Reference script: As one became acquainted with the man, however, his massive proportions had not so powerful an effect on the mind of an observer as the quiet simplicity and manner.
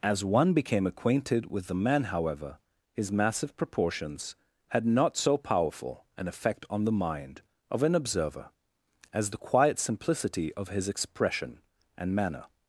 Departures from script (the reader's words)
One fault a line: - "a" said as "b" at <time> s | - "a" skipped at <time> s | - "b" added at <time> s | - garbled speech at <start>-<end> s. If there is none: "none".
- "of his expression" added at 10.5 s